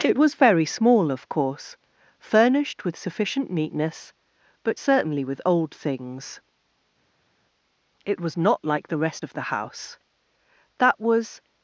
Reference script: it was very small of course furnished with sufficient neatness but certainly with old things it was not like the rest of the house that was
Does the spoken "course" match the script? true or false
true